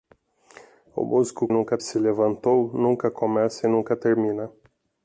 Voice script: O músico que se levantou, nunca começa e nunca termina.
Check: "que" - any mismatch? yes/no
yes